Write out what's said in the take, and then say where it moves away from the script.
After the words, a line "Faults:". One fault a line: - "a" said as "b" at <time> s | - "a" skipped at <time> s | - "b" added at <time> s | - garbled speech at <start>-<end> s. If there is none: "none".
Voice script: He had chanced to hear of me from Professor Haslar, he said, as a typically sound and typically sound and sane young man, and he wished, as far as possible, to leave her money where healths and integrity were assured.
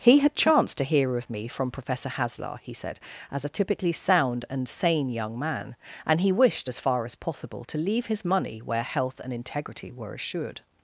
He had chanced to hear of me from Professor Haslar, he said, as a typically sound and sane young man, and he wished, as far as possible, to leave his money where health and integrity were assured.
Faults:
- "typically sound and" skipped at 4.7 s
- "her" said as "his" at 8.1 s
- "healths" said as "health" at 8.8 s